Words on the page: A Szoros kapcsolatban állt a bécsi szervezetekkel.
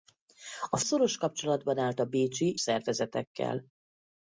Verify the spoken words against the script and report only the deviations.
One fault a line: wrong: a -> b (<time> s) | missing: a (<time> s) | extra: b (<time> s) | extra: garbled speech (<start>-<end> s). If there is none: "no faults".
no faults